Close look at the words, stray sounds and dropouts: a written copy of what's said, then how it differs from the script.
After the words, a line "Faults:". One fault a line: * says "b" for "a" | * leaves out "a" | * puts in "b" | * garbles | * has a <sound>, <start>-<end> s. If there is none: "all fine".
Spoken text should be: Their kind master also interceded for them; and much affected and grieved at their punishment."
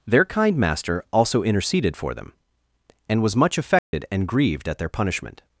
Their kind master also interceded for them; and was much affected and grieved at their punishment."
Faults:
* puts in "was"
* has a dropout, 3.8-3.9 s